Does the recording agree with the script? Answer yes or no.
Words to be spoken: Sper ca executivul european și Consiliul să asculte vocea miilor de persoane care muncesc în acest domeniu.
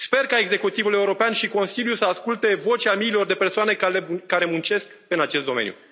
yes